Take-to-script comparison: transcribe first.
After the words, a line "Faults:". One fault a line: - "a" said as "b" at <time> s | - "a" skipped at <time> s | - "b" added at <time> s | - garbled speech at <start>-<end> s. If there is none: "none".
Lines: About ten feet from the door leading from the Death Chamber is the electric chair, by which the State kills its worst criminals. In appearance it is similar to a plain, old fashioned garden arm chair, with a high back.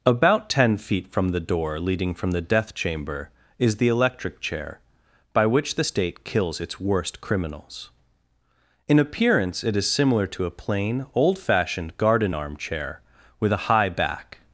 About ten feet from the door leading from the Death Chamber is the electric chair, by which the State kills its worst criminals. In appearance it is similar to a plain, old fashioned garden arm chair, with a high back.
Faults:
none